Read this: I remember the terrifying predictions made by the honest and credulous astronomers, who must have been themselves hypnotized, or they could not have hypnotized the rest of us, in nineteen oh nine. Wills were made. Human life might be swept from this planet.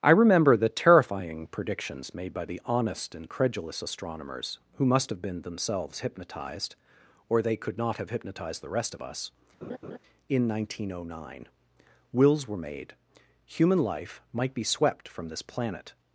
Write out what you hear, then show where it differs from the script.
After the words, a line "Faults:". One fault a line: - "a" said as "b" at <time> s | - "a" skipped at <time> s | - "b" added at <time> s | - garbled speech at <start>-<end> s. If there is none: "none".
I remember the terrifying predictions made by the honest and credulous astronomers, who must have been themselves hypnotized, or they could not have hypnotized the rest of us, in nineteen oh nine. Wills were made. Human life might be swept from this planet.
Faults:
none